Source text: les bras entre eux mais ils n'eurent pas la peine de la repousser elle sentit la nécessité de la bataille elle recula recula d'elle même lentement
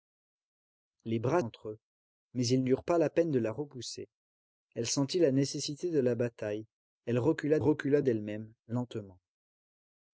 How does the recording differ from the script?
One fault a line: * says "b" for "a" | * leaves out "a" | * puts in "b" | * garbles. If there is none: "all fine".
all fine